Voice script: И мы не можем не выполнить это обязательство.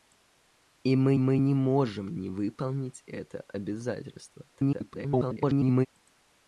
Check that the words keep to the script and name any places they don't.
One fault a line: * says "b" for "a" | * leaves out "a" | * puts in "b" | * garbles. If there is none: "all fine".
* puts in "мы"
* garbles